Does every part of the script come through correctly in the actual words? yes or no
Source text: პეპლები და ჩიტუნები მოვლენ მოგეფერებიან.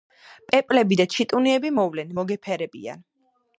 yes